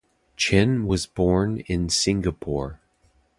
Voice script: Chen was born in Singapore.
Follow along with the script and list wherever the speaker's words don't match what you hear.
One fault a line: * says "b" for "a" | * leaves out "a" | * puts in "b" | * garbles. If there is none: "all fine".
all fine